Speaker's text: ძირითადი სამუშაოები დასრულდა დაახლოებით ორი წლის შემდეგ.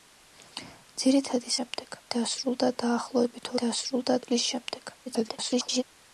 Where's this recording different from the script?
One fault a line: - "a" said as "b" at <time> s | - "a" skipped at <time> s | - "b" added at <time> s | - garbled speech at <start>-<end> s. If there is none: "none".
- "სამუშაოები" said as "შემდეგ" at 1.6 s
- "ორი" said as "დასრულდა" at 3.6 s
- garbled speech at 5.1-5.8 s